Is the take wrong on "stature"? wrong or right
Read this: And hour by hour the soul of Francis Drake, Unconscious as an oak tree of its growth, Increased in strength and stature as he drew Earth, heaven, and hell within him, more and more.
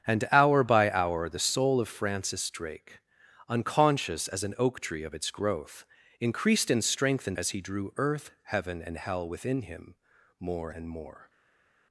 wrong